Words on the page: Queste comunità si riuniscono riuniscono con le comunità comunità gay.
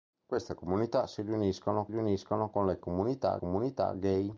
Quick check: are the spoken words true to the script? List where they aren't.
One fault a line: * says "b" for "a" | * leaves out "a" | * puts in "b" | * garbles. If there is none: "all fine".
all fine